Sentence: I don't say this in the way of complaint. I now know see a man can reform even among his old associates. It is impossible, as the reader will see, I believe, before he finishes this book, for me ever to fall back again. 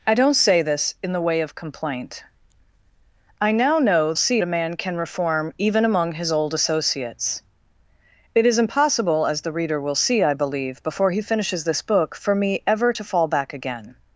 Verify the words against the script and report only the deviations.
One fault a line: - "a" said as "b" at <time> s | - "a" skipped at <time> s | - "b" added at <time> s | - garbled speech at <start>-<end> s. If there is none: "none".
none